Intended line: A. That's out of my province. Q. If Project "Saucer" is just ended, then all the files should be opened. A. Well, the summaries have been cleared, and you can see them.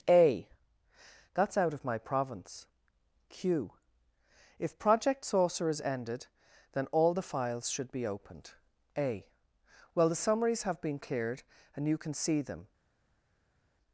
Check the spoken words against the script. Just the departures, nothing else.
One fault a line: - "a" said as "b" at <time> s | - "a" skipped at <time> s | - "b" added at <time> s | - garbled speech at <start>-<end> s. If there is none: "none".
- "just" skipped at 5.8 s